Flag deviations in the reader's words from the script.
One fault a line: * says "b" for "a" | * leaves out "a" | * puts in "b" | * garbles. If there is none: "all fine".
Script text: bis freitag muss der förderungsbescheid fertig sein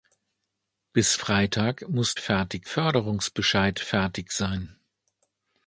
* says "fertig" for "der"